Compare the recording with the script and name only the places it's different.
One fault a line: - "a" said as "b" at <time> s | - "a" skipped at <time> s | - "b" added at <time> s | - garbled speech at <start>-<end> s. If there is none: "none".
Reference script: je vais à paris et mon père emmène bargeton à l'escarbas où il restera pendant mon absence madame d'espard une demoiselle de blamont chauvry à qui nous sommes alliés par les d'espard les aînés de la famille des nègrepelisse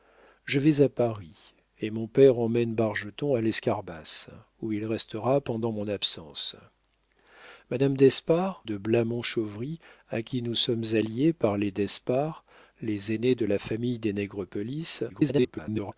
- "une demoiselle" skipped at 8.6 s
- garbled speech at 15.1-15.9 s